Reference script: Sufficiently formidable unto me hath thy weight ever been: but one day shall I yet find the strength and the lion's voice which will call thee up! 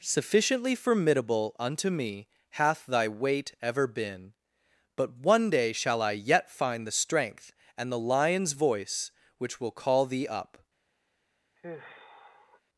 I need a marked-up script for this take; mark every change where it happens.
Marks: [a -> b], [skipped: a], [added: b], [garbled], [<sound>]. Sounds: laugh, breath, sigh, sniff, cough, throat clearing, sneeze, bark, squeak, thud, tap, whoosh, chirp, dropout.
Sufficiently formidable unto me hath thy weight ever been: but one day shall I yet find the strength and the lion's voice which will call thee up! [sigh]